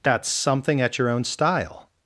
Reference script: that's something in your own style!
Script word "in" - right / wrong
wrong